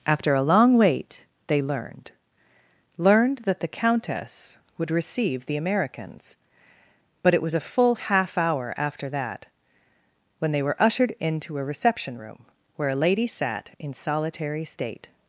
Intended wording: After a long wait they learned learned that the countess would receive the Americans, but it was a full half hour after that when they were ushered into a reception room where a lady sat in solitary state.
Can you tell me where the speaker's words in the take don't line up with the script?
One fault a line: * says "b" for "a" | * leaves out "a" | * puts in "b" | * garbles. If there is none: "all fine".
all fine